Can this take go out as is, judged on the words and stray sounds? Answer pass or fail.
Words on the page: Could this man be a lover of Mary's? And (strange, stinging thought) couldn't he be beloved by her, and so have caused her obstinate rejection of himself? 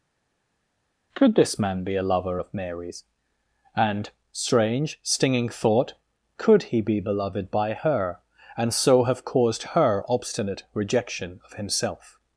fail